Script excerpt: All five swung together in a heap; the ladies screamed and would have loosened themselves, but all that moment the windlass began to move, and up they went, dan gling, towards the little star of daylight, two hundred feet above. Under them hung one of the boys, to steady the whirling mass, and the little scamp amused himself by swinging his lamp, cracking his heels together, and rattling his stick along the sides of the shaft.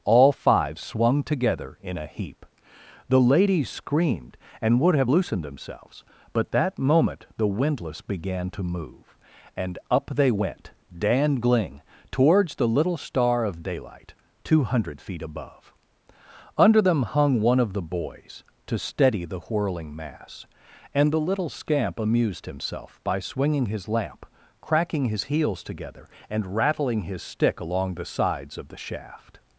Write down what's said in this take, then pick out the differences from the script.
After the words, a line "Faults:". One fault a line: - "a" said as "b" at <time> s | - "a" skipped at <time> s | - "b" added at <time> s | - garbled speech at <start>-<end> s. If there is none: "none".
All five swung together in a heap; the ladies screamed and would have loosened themselves, but that moment the windlass began to move, and up they went, dan gling, towards the little star of daylight, two hundred feet above. Under them hung one of the boys, to steady the whirling mass, and the little scamp amused himself by swinging his lamp, cracking his heels together, and rattling his stick along the sides of the shaft.
Faults:
- "all" skipped at 6.5 s